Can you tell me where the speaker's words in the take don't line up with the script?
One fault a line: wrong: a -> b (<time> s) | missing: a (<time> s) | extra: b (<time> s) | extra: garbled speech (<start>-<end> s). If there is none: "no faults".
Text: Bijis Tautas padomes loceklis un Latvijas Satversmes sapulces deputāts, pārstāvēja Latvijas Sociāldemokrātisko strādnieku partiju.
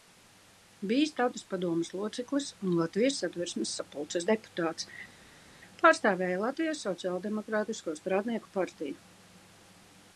no faults